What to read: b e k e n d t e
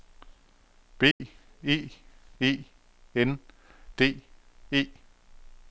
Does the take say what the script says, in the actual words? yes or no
no